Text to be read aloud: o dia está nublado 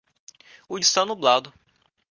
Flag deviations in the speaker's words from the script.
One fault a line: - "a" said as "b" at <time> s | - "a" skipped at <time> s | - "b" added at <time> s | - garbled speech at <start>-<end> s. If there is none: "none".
- "dia" skipped at 0.8 s